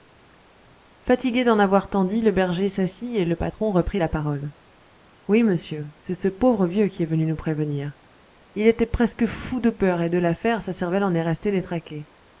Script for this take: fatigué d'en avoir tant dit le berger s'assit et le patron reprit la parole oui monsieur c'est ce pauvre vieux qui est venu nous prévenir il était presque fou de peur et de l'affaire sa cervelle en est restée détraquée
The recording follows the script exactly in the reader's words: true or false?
true